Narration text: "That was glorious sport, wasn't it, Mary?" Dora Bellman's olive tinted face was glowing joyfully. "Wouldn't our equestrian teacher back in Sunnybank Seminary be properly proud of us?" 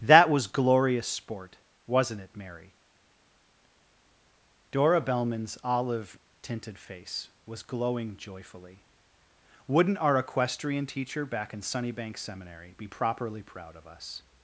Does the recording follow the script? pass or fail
pass